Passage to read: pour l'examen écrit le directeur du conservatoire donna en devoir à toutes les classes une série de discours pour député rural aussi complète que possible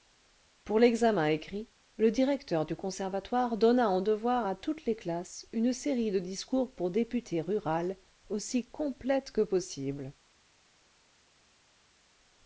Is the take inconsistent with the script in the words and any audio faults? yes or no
no